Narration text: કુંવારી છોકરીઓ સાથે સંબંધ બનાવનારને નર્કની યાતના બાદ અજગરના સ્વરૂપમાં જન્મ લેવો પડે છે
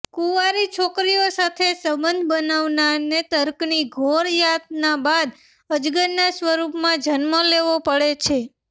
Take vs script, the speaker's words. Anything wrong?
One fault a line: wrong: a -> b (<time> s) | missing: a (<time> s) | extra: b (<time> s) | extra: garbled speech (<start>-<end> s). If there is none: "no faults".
extra: ઘોર (3.9 s)